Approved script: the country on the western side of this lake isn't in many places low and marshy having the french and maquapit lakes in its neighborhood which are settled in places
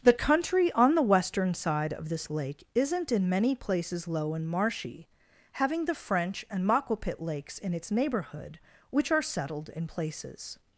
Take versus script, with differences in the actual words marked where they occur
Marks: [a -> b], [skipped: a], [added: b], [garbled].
the country on the western side of this lake isn't in many places low and marshy having the french and maquapit lakes in its neighborhood which are settled in places